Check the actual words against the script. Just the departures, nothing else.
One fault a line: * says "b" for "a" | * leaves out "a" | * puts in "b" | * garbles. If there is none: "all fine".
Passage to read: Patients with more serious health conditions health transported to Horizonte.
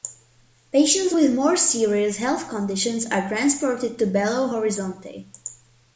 * says "are" for "health"
* puts in "Belo"